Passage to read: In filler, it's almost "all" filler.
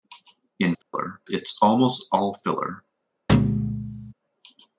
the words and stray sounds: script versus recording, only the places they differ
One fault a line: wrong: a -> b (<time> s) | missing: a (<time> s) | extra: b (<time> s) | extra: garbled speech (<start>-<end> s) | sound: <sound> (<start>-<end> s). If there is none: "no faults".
sound: dropout (0.8-0.9 s)
sound: thud (3.3-4.1 s)